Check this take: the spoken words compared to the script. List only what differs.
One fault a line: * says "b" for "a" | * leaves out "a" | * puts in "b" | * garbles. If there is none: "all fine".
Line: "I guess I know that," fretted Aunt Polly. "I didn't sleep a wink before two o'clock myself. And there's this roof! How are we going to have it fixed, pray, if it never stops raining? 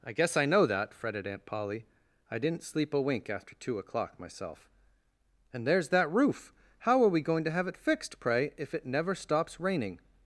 * says "after" for "before"
* says "that" for "this"